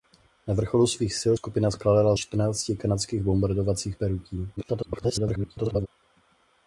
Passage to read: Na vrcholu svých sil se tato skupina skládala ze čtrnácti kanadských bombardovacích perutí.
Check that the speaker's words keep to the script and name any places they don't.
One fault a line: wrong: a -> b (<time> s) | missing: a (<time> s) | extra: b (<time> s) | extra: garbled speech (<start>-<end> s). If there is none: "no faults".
missing: se tato (1.4 s)
missing: ze (2.2 s)
extra: garbled speech (4.6-5.9 s)